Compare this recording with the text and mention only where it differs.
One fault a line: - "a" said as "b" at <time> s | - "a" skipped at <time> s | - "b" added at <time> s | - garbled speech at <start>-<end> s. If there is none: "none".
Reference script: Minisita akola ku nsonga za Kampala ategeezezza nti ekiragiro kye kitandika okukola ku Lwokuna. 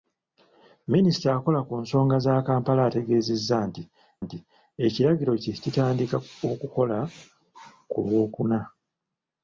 - "nti" added at 4.2 s